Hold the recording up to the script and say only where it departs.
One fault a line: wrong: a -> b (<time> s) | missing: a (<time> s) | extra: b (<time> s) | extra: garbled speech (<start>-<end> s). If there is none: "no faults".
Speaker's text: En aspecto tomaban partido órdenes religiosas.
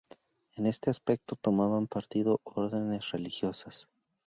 extra: este (0.6 s)